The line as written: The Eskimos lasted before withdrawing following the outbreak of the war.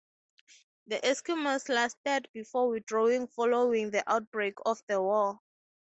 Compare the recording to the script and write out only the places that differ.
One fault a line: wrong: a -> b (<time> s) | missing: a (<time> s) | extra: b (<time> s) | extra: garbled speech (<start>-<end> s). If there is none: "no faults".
no faults